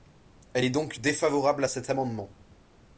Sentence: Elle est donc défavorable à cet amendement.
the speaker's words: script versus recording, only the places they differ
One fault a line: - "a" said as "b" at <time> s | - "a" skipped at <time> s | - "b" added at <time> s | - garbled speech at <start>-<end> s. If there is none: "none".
none